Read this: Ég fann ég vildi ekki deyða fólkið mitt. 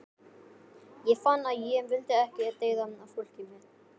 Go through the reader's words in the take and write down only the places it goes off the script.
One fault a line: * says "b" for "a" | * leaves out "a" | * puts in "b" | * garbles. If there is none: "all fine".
* puts in "að"